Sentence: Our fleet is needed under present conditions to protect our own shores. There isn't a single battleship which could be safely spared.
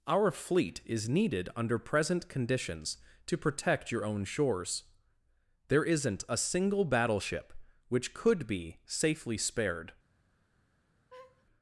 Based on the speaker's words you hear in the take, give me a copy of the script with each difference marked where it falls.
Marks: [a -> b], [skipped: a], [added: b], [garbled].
Our fleet is needed under present conditions to protect [our -> your] own shores. There isn't a single battleship which could be safely spared.